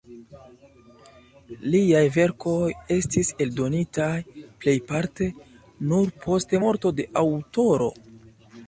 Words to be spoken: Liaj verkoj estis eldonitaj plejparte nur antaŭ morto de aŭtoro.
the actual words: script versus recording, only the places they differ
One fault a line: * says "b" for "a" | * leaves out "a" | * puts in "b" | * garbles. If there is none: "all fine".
* says "post" for "antaŭ"